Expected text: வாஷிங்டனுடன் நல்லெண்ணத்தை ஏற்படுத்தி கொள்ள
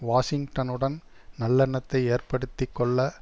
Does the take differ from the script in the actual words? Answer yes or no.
no